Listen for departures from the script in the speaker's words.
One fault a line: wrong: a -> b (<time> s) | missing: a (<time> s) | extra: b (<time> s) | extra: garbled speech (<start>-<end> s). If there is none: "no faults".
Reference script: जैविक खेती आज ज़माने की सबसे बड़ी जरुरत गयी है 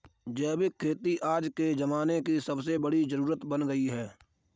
extra: के (1.6 s)
extra: बन (3.5 s)